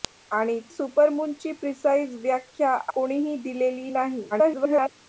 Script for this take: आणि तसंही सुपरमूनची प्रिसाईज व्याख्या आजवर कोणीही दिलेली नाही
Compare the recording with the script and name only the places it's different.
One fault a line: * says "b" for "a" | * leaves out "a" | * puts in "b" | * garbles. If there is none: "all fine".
* leaves out "तसंही"
* leaves out "आजवर"
* garbles